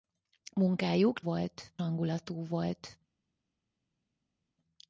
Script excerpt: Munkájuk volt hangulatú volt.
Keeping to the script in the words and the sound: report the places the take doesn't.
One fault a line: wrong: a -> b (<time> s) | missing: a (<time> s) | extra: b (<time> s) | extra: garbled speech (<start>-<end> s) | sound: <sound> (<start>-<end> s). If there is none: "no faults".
no faults